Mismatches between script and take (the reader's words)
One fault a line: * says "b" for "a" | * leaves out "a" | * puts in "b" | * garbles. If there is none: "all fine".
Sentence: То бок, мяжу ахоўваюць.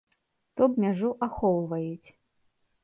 * leaves out "бок"